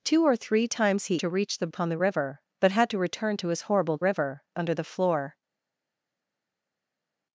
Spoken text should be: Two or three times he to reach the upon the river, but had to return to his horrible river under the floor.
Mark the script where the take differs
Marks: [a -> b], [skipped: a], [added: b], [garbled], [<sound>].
Two or three times he to reach the upon the river, but had to return to his horrible river under the floor.